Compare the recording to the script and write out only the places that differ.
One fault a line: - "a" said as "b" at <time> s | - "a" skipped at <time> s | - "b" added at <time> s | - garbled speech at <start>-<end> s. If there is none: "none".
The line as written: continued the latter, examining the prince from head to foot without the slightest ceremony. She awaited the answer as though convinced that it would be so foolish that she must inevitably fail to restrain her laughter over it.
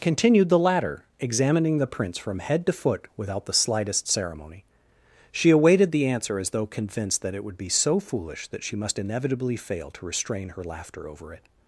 none